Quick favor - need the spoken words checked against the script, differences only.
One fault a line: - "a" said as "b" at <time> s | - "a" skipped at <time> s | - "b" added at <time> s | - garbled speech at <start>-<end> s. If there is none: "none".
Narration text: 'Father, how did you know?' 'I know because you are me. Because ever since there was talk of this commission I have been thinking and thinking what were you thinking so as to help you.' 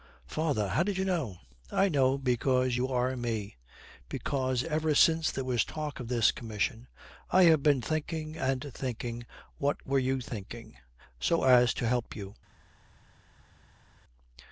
none